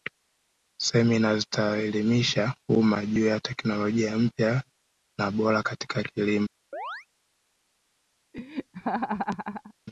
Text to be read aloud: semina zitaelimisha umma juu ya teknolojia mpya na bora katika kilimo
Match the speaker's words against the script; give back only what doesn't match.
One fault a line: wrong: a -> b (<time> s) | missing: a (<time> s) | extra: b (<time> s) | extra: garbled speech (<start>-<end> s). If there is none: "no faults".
no faults